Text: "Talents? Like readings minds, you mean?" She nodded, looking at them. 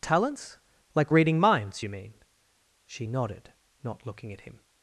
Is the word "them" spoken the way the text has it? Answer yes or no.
no